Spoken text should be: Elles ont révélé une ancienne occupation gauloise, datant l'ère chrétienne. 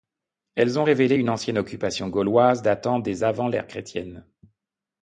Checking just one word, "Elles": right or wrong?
right